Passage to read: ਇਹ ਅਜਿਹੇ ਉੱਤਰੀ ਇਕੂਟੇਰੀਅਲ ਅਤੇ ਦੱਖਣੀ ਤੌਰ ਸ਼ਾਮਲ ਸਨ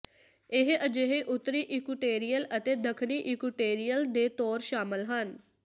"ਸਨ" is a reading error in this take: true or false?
true